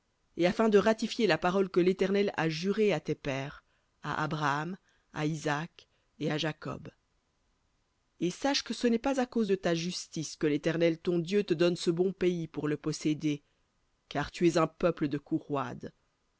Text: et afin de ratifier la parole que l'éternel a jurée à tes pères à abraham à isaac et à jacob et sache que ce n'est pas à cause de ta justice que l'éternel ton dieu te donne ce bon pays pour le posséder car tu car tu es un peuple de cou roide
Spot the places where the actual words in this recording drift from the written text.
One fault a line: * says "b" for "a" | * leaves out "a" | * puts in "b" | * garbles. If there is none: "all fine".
* leaves out "car tu"